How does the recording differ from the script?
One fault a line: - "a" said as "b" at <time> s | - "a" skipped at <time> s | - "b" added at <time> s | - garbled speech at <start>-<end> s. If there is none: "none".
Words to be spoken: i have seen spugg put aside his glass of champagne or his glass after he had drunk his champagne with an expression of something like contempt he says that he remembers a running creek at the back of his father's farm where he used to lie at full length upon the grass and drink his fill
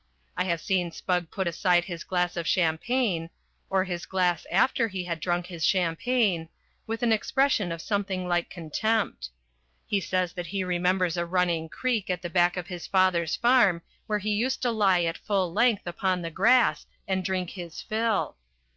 none